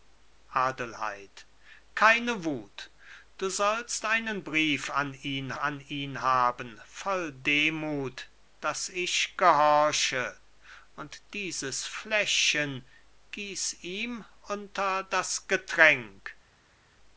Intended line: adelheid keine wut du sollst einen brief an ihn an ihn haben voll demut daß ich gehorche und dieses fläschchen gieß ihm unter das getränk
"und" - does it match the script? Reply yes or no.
yes